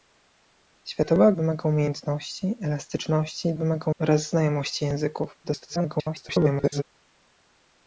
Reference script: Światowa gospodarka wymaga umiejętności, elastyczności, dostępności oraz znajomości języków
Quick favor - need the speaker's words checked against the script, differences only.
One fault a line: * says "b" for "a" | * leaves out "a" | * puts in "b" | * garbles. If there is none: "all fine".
* leaves out "gospodarka"
* says "wymaga" for "dostępności"
* garbles